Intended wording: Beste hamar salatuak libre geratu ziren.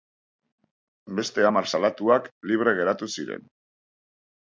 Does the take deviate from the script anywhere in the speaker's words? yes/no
no